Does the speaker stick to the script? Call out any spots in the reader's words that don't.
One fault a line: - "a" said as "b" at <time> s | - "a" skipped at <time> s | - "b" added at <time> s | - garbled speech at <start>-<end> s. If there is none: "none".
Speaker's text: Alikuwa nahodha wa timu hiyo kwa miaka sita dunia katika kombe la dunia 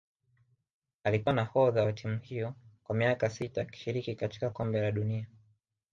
- "dunia" said as "akishiriki" at 3.6 s